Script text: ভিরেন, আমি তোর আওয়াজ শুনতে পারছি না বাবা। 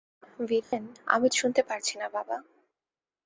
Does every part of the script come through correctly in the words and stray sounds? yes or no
no